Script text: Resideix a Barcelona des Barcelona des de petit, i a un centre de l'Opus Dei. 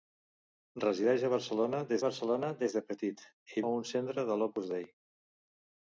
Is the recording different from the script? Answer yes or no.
no